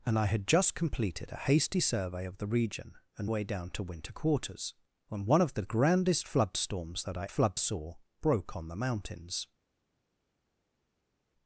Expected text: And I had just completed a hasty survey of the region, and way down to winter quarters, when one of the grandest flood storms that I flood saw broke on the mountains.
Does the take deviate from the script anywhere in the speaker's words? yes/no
no